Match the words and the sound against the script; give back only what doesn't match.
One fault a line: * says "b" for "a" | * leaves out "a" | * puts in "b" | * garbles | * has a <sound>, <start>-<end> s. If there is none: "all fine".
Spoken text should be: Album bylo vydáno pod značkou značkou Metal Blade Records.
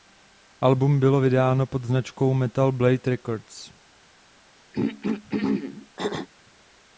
* leaves out "značkou"
* has a throat clearing, 4.7-6.3 s